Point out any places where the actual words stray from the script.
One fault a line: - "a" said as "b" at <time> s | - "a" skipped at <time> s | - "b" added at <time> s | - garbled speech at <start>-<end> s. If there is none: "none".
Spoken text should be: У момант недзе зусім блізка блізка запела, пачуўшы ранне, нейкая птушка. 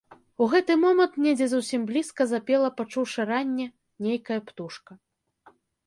- "гэты" added at 0.5 s
- "блізка" skipped at 2.3 s